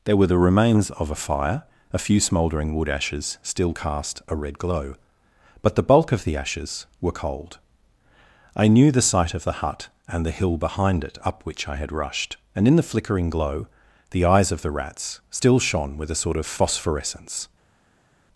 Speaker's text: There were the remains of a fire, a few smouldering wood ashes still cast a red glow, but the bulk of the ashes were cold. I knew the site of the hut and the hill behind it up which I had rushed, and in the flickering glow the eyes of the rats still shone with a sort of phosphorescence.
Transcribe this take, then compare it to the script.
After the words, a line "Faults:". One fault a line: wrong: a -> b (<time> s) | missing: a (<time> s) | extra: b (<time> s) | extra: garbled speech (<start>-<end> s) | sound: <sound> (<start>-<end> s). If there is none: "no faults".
There were the remains of a fire, a few smouldering wood ashes still cast a red glow, but the bulk of the ashes were cold. I knew the site of the hut and the hill behind it up which I had rushed, and in the flickering glow the eyes of the rats still shone with a sort of phosphorescence.
Faults:
no faults